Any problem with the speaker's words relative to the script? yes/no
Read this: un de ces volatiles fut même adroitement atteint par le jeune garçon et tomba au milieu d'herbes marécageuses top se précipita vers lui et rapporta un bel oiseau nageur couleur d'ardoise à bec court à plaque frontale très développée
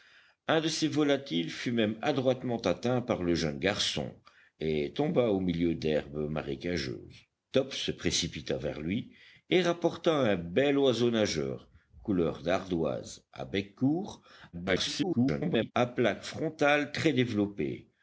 yes